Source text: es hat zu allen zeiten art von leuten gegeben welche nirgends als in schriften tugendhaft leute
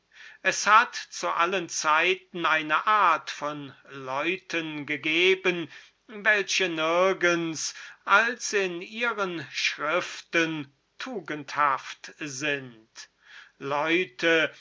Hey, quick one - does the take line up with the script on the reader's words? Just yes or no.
no